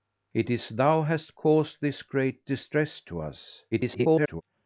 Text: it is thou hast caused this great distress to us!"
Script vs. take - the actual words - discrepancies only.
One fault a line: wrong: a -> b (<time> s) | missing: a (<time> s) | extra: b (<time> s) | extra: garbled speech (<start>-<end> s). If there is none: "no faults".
extra: garbled speech (3.7-4.4 s)